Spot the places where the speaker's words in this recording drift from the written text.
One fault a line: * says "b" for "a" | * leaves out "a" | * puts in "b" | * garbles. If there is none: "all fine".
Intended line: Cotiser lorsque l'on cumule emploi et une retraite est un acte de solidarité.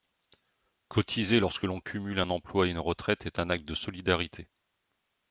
* puts in "un"